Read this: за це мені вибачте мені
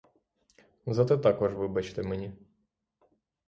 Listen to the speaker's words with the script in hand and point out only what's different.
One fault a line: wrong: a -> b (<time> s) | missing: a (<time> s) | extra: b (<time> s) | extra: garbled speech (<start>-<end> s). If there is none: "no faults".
wrong: мені -> також (1.2 s)